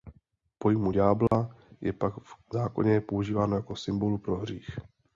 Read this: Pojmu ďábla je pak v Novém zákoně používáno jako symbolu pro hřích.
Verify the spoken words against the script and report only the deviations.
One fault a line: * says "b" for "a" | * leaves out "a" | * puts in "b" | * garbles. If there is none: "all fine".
* leaves out "Novém"